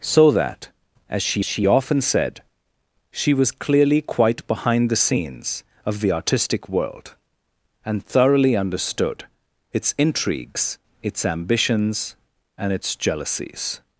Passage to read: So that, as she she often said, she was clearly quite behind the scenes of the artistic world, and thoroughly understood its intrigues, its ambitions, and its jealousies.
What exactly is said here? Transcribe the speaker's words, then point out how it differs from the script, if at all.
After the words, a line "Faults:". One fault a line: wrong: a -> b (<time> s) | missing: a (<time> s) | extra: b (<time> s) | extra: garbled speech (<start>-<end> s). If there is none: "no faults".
So that, as she she often said, she was clearly quite behind the scenes of the artistic world, and thoroughly understood its intrigues, its ambitions, and its jealousies.
Faults:
no faults